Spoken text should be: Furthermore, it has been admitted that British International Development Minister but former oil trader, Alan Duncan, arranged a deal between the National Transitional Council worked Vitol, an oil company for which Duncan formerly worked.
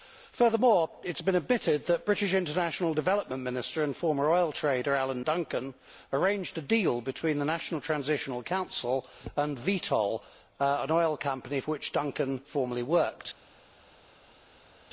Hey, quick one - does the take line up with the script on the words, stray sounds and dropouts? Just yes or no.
no